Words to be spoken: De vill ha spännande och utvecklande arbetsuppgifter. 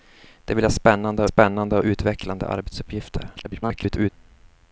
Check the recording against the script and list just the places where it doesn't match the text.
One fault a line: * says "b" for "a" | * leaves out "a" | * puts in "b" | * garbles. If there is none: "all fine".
* puts in "spännande"
* garbles